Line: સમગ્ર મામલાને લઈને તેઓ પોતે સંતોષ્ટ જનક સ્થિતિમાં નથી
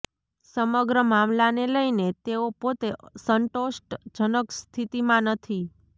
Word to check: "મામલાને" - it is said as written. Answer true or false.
true